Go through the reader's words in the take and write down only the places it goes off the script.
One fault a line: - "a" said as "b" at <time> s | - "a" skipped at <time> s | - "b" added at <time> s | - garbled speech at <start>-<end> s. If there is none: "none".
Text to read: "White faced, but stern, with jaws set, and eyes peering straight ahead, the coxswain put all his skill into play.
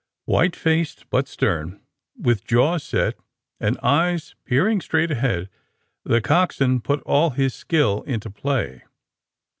none